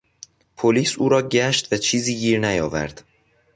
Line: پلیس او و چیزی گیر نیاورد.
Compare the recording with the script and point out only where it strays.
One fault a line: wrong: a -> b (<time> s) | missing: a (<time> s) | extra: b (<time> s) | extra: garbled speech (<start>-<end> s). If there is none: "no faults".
extra: را گشت (1.1 s)